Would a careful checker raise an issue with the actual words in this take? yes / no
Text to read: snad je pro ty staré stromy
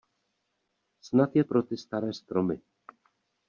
no